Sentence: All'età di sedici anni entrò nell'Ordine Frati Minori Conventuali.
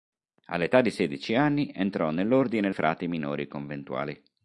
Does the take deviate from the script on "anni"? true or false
false